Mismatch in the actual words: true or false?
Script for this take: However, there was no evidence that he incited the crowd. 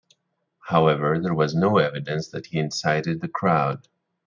false